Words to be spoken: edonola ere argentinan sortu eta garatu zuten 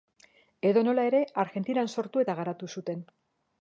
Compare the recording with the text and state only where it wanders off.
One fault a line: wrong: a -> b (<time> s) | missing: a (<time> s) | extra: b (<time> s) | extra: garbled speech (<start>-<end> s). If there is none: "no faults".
no faults